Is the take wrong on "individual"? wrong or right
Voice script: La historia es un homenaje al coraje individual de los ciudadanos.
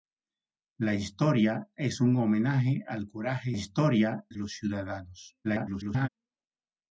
wrong